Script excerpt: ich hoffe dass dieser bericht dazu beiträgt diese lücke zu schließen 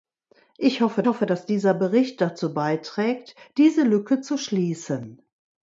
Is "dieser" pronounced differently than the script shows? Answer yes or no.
no